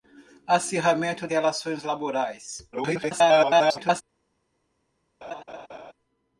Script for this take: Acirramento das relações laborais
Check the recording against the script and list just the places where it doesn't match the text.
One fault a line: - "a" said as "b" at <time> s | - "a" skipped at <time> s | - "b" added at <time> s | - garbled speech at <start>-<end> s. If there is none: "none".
- "das" skipped at 1.3 s
- garbled speech at 2.7-4.0 s